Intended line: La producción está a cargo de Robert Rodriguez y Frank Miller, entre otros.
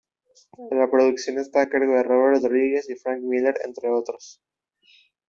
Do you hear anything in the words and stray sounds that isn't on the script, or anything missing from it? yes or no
no